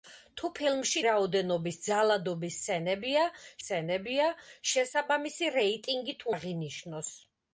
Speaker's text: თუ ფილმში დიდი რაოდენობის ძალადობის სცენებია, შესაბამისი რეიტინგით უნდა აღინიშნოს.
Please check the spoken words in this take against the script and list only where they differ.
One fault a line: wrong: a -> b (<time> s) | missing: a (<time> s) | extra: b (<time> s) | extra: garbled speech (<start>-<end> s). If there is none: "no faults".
missing: დიდი (1.0 s)
extra: სცენებია (3.6 s)
missing: უნდა (6.3 s)